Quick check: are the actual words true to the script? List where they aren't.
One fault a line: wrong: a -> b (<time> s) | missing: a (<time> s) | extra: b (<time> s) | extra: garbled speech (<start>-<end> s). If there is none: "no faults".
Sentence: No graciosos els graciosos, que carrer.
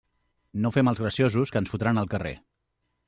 wrong: graciosos -> fem (0.8 s)
extra: ens fotran al (1.6 s)